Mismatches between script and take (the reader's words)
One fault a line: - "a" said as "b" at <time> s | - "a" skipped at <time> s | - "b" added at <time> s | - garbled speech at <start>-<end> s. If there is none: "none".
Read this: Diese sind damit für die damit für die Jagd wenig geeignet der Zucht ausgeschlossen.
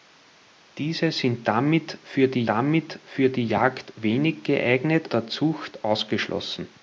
none